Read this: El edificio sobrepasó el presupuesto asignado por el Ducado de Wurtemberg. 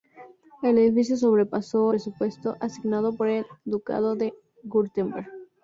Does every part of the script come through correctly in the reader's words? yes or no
no